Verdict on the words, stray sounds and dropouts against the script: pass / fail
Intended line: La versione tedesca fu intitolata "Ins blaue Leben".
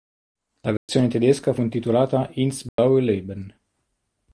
fail